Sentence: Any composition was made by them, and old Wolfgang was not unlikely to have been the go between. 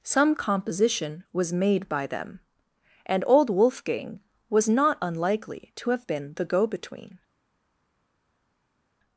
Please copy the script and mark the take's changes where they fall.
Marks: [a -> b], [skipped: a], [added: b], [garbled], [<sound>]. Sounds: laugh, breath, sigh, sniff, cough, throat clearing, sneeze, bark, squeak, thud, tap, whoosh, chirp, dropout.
[Any -> Some] composition was made by them, and old Wolfgang was not unlikely to have been the go between.